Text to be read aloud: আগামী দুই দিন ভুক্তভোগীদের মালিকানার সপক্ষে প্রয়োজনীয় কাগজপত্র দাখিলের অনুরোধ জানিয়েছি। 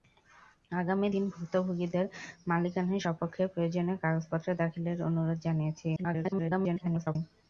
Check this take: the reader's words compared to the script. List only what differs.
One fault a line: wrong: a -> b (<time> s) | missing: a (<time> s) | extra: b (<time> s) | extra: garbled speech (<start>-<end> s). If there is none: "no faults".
missing: দুই (1.1 s)
extra: garbled speech (6.0-7.2 s)